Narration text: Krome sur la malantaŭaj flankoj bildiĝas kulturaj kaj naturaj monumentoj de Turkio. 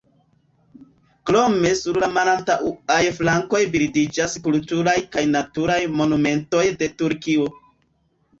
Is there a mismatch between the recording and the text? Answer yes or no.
no